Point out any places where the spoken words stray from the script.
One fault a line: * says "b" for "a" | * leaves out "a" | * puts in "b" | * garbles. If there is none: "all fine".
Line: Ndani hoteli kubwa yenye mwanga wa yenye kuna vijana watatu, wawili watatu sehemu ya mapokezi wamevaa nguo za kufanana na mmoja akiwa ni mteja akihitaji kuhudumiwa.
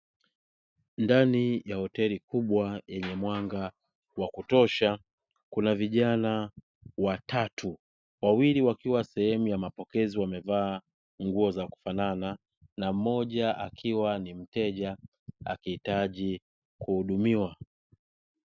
* puts in "ya"
* says "kutosha" for "yenye"
* says "wakiwa" for "watatu"